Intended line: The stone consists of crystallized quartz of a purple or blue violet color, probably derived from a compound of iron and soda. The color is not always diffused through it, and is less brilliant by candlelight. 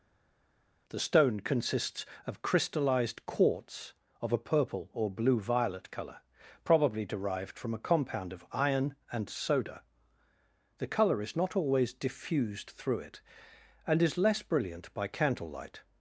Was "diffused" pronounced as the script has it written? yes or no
yes